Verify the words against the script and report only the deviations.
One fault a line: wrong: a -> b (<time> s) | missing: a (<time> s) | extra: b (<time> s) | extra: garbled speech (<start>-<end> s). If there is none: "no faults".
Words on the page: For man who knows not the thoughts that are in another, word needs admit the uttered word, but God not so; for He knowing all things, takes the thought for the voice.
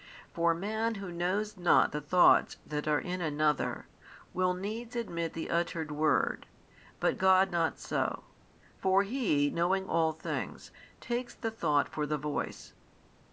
wrong: word -> will (4.3 s)